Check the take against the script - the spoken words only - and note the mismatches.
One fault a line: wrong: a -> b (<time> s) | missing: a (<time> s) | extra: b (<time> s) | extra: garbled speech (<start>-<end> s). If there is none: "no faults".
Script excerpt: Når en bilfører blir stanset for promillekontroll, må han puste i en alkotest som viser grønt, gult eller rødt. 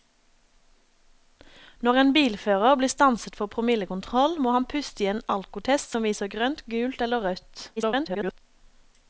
extra: garbled speech (7.8-8.4 s)